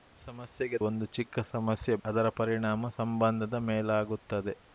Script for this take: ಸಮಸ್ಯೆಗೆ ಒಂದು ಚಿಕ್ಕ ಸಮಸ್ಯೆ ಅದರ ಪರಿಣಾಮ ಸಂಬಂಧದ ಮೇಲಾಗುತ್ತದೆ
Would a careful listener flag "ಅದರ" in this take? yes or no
no